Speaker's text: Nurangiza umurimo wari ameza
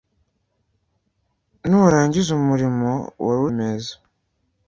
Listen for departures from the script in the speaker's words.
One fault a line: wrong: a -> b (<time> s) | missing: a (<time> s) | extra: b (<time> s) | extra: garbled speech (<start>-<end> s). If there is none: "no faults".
no faults